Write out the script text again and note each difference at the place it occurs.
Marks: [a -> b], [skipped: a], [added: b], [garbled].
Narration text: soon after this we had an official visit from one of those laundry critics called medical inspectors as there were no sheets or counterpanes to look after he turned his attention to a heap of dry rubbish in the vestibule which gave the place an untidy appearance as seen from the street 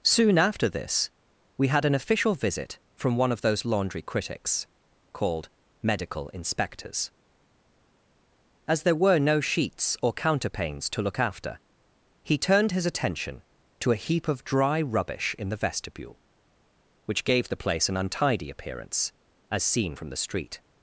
soon after this we had an official visit from one of those laundry critics called medical inspectors as there were no sheets or counterpanes to look after he turned his attention to a heap of dry rubbish in the vestibule which gave the place an untidy appearance as seen from the street